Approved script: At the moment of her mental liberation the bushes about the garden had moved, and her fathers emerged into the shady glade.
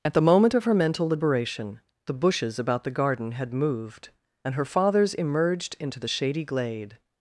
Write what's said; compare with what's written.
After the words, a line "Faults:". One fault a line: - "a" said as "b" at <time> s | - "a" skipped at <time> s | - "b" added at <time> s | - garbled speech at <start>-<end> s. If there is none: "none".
At the moment of her mental liberation the bushes about the garden had moved, and her fathers emerged into the shady glade.
Faults:
none